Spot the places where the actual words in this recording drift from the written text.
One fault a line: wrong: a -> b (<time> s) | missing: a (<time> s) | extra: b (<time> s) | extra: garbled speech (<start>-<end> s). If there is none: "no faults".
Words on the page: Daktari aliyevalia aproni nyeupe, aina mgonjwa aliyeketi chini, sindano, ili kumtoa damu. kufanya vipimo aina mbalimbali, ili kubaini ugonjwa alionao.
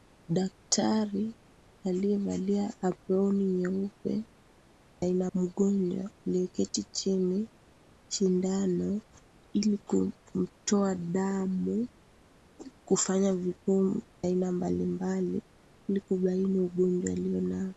no faults